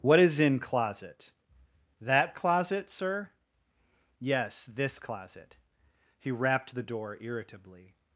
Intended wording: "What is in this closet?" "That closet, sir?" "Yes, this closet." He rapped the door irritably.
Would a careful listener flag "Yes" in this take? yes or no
no